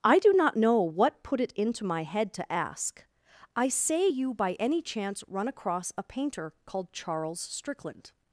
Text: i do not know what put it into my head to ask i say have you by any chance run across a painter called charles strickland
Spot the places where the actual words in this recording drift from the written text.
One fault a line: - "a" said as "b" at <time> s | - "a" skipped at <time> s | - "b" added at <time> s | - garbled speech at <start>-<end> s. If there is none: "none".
- "have" skipped at 4.1 s